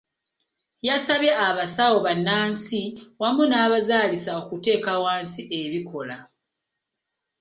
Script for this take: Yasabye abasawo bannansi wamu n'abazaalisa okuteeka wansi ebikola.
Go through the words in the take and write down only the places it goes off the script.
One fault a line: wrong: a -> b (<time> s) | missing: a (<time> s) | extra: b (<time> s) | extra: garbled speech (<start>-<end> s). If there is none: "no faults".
no faults